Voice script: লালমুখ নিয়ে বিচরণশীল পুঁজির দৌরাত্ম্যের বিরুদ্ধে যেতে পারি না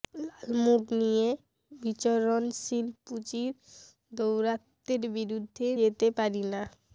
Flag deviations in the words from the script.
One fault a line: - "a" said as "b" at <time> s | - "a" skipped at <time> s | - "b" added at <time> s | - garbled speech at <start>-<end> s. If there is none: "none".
none